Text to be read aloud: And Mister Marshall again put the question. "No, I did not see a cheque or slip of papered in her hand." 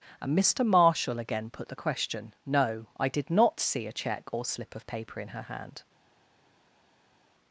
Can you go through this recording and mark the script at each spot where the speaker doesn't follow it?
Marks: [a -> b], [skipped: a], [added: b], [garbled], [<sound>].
And Mister Marshall again put the question. "No, I did not see a cheque or slip of [papered -> paper] in her hand."